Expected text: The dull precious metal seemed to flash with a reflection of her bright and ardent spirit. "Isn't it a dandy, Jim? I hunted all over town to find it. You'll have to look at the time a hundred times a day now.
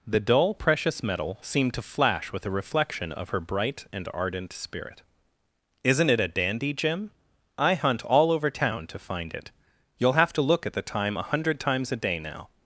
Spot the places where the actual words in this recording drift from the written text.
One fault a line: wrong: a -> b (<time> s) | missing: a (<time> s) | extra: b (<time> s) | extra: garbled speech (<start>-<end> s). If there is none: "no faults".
wrong: hunted -> hunt (7.8 s)